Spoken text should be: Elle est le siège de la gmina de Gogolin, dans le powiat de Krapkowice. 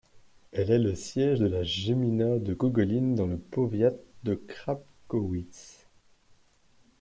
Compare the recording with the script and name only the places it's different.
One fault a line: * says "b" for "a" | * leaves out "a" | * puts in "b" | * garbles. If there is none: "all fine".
all fine